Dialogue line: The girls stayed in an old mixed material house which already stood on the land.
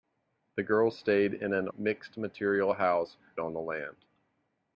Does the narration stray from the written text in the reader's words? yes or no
yes